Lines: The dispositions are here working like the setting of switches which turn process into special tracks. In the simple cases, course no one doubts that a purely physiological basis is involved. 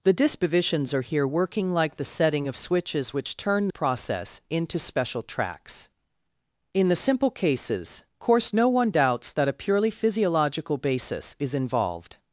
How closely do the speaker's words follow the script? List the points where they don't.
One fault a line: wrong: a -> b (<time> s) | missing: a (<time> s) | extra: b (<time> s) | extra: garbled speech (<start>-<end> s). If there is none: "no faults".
no faults